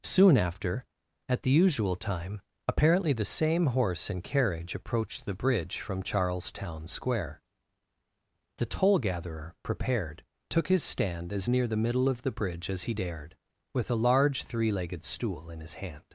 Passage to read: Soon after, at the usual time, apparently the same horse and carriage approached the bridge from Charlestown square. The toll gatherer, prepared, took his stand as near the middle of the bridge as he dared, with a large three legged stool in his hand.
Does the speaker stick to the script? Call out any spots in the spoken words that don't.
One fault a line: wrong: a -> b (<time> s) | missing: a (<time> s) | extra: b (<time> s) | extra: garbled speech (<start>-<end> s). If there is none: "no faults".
no faults